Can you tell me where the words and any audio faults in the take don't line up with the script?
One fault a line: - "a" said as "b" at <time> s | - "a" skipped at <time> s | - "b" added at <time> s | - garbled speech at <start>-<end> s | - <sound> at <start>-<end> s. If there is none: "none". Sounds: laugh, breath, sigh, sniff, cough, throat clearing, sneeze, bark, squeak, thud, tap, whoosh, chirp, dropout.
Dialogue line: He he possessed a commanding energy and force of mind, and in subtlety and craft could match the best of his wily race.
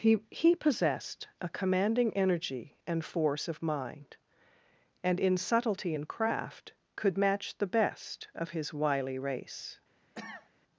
- cough at 10.1-10.5 s